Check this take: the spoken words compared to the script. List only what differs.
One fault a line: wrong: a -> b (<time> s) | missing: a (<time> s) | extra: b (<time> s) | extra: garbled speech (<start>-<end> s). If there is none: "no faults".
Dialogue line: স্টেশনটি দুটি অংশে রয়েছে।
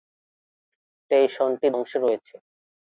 missing: দুটি (1.7 s)